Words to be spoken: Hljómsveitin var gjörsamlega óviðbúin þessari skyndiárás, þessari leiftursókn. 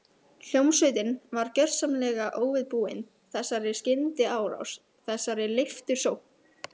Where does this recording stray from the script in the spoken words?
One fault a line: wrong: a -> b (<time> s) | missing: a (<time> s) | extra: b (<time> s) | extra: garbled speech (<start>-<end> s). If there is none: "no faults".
no faults